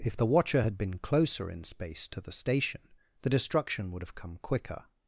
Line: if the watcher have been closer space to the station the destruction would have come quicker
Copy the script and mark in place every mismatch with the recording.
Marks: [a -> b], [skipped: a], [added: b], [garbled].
if the watcher [have -> had] been closer [added: in] space to the station the destruction would have come quicker